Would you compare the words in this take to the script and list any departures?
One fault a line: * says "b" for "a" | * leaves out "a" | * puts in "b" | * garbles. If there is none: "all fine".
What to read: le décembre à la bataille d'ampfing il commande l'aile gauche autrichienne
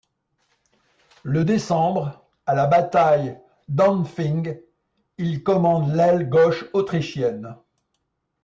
all fine